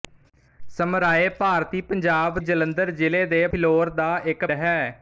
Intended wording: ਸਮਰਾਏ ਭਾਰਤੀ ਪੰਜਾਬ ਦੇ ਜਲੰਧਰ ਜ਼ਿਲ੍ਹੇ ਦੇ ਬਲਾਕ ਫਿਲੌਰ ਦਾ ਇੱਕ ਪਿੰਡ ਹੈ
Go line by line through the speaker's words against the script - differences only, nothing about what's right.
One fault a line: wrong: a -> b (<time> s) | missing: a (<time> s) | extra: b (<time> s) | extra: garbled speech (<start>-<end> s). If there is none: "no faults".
missing: ਦੇ (2.4 s)
missing: ਬਲਾਕ (3.5 s)
missing: ਪਿੰਡ (4.5 s)